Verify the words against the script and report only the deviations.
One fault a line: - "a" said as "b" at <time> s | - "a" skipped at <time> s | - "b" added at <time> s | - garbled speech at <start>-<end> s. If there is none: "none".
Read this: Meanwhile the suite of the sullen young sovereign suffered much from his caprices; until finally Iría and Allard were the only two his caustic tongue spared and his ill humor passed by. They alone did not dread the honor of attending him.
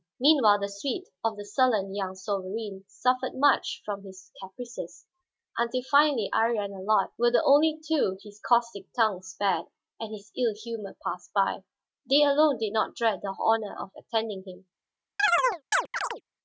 none